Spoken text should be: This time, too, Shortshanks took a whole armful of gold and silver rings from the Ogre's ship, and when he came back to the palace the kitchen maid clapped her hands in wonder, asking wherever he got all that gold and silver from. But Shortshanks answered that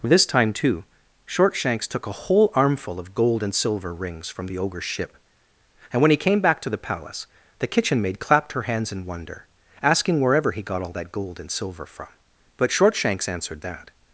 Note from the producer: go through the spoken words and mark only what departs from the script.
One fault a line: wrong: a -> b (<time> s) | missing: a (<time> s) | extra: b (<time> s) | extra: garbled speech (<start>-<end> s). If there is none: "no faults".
no faults